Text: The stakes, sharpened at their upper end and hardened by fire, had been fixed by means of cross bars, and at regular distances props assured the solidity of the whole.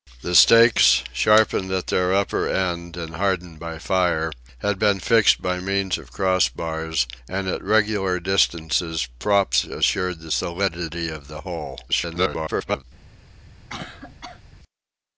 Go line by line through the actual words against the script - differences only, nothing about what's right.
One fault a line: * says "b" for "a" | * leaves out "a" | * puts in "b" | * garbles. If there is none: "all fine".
* garbles